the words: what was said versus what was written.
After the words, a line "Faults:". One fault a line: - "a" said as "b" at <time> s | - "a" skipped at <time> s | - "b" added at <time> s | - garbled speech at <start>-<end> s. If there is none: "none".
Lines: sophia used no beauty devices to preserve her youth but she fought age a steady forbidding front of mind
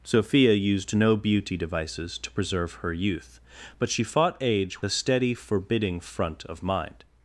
sophia used no beauty devices to preserve her youth but she fought age a steady forbidding front of mind
Faults:
none